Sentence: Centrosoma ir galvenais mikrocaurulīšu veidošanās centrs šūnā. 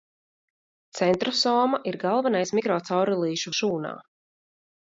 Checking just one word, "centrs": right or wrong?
wrong